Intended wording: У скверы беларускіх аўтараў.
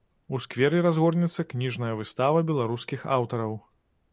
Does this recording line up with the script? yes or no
no